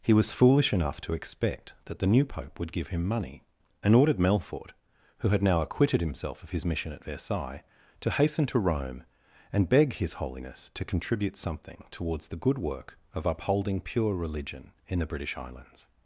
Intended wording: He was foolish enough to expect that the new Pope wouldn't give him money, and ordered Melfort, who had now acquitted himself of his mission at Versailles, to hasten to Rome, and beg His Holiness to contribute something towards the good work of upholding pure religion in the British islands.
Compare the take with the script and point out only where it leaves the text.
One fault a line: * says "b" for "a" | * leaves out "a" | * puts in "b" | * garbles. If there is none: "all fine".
* says "would" for "wouldn't"